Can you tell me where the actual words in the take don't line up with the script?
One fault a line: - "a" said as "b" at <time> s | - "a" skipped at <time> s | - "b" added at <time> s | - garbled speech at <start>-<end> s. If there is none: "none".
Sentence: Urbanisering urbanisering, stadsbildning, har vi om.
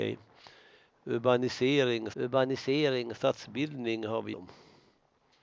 none